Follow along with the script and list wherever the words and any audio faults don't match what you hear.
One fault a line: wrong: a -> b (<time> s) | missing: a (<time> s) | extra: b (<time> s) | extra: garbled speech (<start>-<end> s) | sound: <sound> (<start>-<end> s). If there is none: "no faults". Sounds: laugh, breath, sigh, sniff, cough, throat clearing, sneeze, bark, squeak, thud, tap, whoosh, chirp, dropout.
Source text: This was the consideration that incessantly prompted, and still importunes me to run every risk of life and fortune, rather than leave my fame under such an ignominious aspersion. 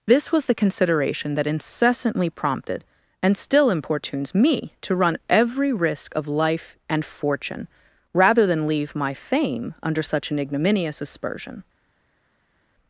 no faults